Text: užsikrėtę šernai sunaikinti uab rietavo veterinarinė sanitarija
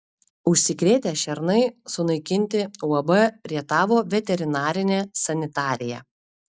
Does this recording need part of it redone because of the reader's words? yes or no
no